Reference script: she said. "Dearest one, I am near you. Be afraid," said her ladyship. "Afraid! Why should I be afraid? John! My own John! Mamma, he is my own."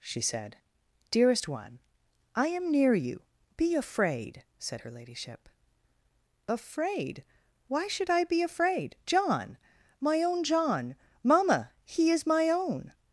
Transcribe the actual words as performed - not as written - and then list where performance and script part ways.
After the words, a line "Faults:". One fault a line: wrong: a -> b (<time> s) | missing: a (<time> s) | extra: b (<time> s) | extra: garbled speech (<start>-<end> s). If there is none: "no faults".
she said. "Dearest one, I am near you. Be afraid," said her ladyship. "Afraid! Why should I be afraid? John! My own John! Mamma, he is my own."
Faults:
no faults